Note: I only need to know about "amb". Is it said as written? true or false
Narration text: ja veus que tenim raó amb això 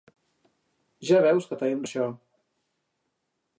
false